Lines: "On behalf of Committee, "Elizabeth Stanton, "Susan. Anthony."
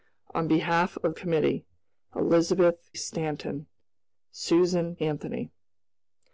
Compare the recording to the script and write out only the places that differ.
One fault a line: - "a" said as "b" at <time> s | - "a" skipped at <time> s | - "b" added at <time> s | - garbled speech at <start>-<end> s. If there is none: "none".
none